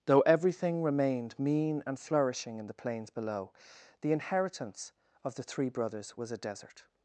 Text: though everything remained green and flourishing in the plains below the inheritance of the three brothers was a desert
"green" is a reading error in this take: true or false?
true